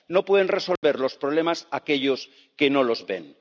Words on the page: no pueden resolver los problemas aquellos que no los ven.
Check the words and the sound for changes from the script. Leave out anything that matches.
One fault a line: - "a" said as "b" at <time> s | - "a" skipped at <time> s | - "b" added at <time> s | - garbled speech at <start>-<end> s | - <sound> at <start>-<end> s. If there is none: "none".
- dropout at 0.8-0.8 s